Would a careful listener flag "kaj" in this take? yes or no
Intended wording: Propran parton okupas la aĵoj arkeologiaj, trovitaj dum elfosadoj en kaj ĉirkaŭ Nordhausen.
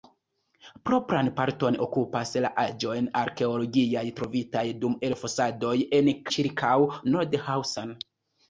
yes